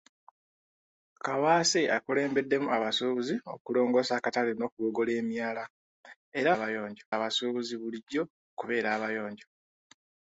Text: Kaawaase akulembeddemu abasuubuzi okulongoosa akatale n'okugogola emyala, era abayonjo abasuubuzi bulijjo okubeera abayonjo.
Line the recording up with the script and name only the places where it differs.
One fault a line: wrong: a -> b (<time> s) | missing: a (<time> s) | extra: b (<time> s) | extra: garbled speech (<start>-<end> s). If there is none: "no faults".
no faults